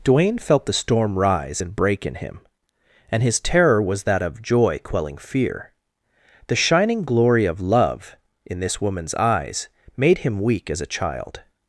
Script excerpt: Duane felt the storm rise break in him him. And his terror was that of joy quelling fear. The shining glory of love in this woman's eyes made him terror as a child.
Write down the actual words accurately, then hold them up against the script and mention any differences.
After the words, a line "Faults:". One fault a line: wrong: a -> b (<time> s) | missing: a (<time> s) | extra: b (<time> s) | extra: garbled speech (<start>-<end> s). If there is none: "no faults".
Duane felt the storm rise and break in him. And his terror was that of joy quelling fear. The shining glory of love in this woman's eyes made him weak as a child.
Faults:
extra: and (1.6 s)
missing: him (2.4 s)
wrong: terror -> weak (10.4 s)